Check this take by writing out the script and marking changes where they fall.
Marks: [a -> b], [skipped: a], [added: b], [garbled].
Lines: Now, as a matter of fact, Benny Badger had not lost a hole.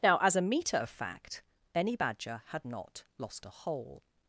Now, as a [matter -> meter] of fact, Benny Badger had not lost a hole.